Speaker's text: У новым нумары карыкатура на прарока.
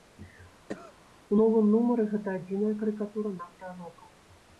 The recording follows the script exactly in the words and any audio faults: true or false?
false